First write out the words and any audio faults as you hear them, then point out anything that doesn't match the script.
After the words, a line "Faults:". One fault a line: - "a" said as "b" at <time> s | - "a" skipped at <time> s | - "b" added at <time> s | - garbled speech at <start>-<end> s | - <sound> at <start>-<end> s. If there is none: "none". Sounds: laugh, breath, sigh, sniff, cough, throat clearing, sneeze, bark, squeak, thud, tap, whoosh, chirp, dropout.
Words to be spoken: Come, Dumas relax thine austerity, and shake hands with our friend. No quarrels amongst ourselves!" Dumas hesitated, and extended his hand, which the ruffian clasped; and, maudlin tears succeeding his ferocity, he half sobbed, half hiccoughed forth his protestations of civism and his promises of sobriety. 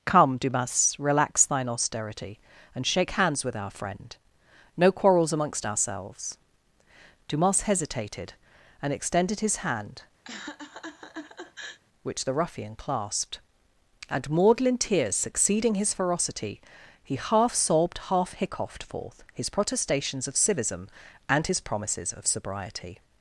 Come, Dumas relax thine austerity, and shake hands with our friend. No quarrels amongst ourselves!" Dumas hesitated, and extended his hand, which the ruffian clasped; and, maudlin tears succeeding his ferocity, he half sobbed, half hiccoughed forth his protestations of civism and his promises of sobriety.
Faults:
- laugh at 10.2-11.8 s